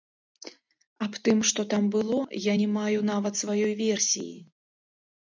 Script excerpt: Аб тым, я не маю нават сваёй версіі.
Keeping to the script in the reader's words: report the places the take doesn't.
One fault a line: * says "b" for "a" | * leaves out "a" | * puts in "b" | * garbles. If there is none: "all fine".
* puts in "што там было"